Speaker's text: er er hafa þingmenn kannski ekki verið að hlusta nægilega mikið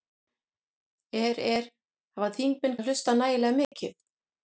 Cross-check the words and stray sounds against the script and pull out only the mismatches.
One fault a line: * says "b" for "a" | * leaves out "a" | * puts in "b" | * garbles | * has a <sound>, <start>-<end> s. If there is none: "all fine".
* leaves out "kannski ekki verið"
* has a dropout, 3.6-3.7 s